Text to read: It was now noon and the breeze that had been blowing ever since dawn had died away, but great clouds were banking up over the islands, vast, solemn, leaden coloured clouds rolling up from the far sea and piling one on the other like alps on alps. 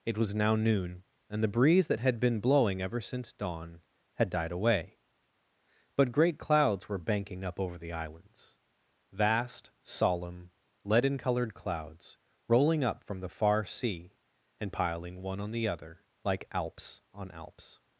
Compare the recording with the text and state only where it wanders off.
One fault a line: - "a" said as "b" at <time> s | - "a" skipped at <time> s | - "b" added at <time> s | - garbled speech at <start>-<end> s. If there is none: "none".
none